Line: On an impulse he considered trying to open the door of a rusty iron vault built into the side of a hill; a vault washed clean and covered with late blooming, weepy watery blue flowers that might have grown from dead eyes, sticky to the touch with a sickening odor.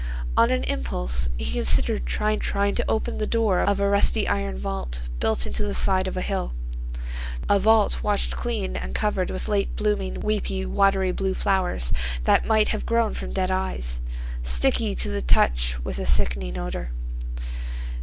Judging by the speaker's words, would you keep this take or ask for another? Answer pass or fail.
fail